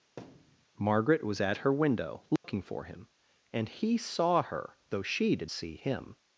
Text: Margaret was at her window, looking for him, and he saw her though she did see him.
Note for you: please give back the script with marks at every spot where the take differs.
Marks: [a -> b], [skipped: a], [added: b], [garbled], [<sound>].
[thud] Margaret was at her window, looking [dropout] for him, and he saw her though she did see him.